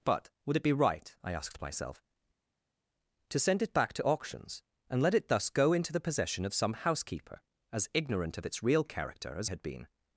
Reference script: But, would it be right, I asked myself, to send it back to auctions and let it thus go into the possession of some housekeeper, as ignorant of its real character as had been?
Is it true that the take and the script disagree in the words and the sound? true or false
false